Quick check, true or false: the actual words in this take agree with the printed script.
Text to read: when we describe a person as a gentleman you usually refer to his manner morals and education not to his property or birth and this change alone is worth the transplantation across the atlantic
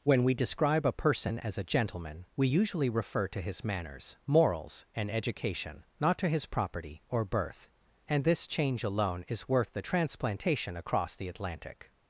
false